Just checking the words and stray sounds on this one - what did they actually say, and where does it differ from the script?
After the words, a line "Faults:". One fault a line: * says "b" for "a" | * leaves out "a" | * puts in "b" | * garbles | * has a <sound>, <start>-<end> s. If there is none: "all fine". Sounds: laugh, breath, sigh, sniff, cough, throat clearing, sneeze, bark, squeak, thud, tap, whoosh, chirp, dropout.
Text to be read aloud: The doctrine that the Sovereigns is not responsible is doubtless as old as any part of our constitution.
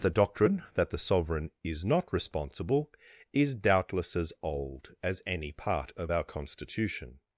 The doctrine that the Sovereign is not responsible is doubtless as old as any part of our constitution.
Faults:
* says "Sovereign" for "Sovereigns"